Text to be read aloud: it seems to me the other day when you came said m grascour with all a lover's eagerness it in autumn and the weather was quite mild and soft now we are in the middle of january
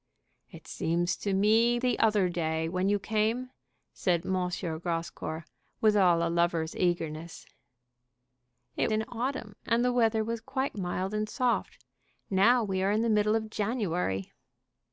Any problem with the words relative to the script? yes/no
no